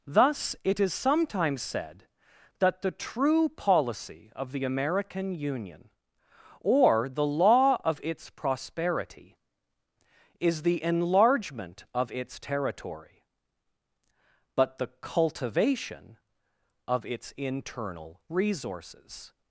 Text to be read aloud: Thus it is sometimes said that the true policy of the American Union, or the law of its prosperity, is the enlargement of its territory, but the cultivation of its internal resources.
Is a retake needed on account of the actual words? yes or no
no